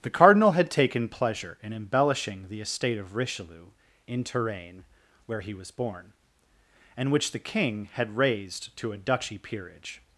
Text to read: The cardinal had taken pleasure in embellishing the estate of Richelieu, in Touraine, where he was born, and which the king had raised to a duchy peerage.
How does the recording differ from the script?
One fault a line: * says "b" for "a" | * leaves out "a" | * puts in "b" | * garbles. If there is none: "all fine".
all fine